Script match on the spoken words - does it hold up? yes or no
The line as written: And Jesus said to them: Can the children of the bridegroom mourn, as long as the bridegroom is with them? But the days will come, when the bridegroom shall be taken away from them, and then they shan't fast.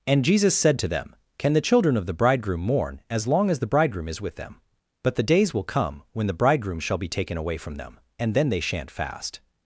yes